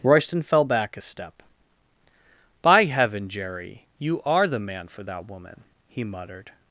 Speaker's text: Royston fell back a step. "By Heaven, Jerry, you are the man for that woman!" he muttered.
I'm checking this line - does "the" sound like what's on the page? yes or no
yes